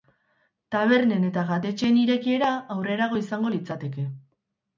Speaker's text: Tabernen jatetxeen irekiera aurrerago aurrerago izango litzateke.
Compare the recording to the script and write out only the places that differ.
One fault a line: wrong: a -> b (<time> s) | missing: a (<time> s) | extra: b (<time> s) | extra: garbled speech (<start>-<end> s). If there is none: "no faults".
extra: eta (1.3 s)
missing: aurrerago (3.2 s)